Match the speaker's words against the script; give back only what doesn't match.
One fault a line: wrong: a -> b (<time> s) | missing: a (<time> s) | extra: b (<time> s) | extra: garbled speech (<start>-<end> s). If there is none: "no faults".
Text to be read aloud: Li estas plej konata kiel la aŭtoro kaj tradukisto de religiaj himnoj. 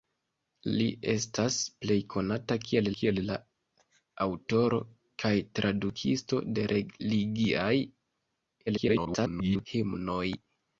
extra: kiel (2.9 s)
extra: garbled speech (8.7-9.7 s)